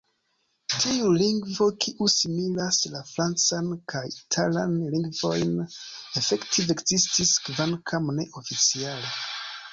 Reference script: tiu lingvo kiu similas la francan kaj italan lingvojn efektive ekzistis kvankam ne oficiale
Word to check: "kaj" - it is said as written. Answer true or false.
true